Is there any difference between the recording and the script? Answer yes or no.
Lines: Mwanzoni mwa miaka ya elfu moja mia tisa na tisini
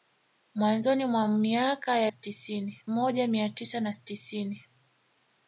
yes